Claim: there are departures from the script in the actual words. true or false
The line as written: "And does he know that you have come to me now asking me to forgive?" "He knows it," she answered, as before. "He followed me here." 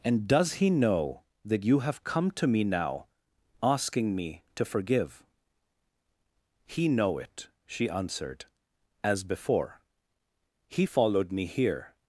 true